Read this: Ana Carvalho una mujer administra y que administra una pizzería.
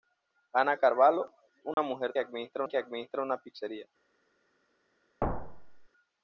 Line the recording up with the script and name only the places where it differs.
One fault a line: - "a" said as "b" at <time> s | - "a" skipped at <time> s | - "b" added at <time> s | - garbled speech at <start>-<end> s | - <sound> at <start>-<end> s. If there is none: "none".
- dropout at 1.7-1.8 s
- thud at 5.2-5.9 s